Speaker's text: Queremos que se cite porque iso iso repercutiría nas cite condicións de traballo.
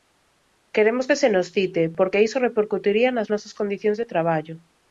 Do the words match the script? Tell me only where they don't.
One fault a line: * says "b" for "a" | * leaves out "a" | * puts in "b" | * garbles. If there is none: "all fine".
* puts in "nos"
* leaves out "iso"
* says "nosas" for "cite"